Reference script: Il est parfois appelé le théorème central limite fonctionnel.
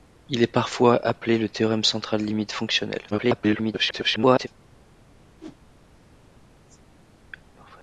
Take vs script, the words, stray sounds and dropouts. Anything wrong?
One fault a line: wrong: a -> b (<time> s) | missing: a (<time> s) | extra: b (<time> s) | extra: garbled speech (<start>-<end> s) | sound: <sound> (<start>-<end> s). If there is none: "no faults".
extra: garbled speech (3.1-4.5 s)
sound: whoosh (5.4-5.6 s)